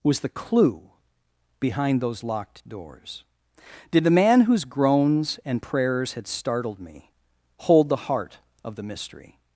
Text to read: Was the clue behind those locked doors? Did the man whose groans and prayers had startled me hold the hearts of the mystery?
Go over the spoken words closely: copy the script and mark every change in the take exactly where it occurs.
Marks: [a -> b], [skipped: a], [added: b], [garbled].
Was the clue behind those locked doors? Did the man whose groans and prayers had startled me hold the [hearts -> heart] of the mystery?